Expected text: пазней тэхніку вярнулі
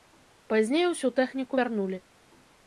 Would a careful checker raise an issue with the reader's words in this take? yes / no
yes